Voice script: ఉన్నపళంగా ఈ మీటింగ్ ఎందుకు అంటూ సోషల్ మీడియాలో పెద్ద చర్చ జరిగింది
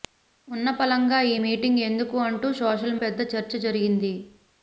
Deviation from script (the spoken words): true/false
true